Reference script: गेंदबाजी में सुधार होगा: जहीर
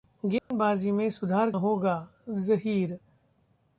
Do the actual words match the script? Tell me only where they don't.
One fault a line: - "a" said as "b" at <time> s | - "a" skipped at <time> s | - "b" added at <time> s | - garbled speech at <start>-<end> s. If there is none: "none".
none